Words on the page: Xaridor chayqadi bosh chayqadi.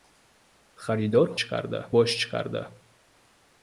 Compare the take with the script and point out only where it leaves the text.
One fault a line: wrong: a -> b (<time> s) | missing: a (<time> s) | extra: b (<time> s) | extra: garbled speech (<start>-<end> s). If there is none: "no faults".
no faults